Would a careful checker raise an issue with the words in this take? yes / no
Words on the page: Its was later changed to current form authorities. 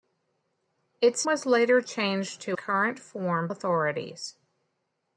no